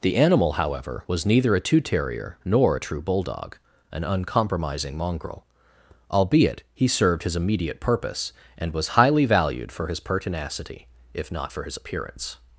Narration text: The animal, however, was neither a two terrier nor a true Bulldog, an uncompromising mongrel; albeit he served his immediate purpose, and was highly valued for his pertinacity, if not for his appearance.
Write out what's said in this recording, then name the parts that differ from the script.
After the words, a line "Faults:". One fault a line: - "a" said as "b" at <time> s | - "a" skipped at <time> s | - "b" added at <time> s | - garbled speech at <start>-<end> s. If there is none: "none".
The animal, however, was neither a two terrier nor a true Bulldog, an uncompromising mongrel; albeit he served his immediate purpose, and was highly valued for his pertinacity, if not for his appearance.
Faults:
none